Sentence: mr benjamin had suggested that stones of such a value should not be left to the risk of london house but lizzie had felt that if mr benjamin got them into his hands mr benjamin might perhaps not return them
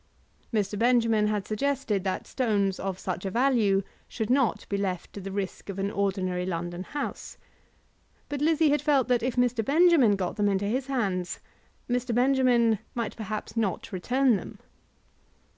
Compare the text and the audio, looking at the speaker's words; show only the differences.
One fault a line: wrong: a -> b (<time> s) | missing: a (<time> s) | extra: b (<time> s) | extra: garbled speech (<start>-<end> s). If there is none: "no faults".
extra: an ordinary (5.8 s)